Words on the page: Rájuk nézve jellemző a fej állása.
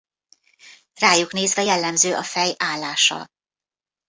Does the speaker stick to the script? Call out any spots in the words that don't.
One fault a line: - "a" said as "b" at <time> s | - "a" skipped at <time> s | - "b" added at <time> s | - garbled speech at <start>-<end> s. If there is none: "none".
none